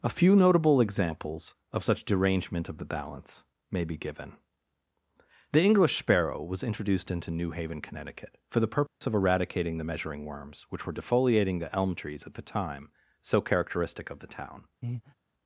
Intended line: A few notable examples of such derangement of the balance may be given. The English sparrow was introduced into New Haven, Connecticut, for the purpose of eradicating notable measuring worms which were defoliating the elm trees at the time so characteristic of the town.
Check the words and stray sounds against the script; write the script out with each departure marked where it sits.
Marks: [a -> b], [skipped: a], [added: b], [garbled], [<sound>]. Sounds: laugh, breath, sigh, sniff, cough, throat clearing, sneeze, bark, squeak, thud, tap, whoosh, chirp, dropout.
A few notable examples of such derangement of the balance may be given. The English sparrow was introduced into New Haven, Connecticut, for the purpose [dropout] of eradicating [notable -> the] measuring worms which were defoliating the elm trees at the time so characteristic of the town. [breath]